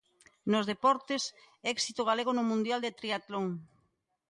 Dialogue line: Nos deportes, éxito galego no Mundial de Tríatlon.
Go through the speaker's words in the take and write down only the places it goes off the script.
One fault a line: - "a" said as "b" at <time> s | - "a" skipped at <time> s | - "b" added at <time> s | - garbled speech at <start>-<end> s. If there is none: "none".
none